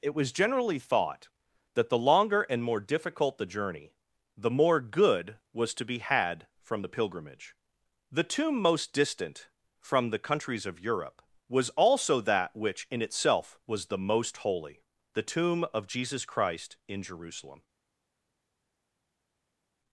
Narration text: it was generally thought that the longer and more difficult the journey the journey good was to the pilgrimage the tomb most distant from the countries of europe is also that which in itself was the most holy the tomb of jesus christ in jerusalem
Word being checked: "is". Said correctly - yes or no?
no